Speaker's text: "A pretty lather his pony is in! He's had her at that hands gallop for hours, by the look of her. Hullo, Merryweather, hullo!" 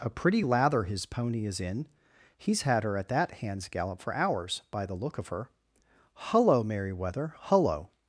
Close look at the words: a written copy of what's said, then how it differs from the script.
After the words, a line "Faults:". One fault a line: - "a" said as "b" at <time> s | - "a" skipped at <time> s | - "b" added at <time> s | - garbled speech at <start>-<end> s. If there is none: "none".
"A pretty lather his pony is in! He's had her at that hands gallop for hours, by the look of her. Hullo, Merryweather, hullo!"
Faults:
none